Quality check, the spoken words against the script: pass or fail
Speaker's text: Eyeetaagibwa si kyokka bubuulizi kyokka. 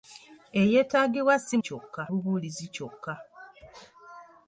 pass